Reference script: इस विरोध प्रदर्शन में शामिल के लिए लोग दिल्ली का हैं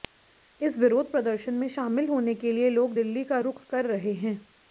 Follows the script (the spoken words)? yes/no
no